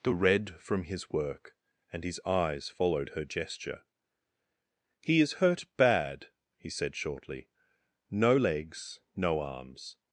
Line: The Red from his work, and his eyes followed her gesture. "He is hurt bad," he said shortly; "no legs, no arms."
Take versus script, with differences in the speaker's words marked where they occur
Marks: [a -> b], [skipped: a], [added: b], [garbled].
The Red from his work, and his eyes followed her gesture. "He is hurt bad," he said shortly; "no legs, no arms."